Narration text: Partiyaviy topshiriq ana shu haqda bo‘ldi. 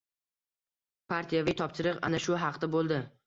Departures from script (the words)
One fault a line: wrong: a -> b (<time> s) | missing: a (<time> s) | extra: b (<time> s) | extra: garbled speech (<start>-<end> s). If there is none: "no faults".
no faults